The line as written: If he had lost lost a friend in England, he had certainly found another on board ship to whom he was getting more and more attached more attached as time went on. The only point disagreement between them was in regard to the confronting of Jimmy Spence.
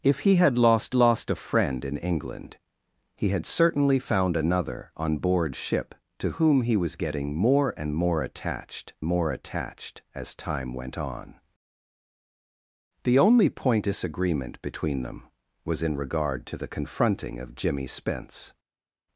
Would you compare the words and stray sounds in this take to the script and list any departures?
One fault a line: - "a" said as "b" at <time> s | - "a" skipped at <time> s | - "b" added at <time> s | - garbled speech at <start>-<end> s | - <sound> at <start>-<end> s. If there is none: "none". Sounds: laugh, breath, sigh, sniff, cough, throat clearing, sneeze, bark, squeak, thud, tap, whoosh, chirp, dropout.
none